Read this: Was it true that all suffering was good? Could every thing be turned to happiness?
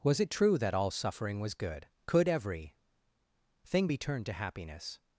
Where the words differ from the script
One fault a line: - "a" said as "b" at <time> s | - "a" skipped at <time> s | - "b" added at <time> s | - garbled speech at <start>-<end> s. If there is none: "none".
none